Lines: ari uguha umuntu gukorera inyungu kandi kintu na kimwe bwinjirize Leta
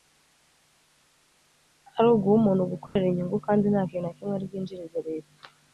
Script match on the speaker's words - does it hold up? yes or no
no